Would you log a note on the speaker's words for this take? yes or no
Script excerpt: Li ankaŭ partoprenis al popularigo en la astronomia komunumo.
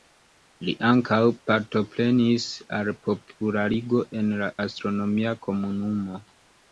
no